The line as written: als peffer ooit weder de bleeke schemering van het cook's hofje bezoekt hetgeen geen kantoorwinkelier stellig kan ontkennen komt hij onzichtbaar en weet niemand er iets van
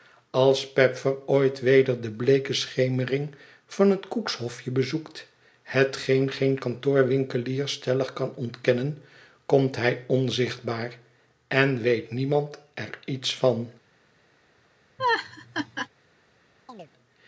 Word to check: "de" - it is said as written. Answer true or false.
true